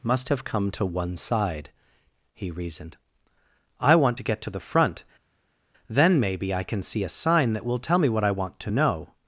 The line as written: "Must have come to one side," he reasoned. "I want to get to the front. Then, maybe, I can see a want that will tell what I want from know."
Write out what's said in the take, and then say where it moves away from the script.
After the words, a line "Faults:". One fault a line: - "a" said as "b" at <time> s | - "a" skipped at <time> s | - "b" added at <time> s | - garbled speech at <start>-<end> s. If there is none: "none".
"Must have come to one side," he reasoned. "I want to get to the front. Then, maybe, I can see a sign that will tell me what I want to know."
Faults:
- "want" said as "sign" at 7.1 s
- "me" added at 8.0 s
- "from" said as "to" at 8.6 s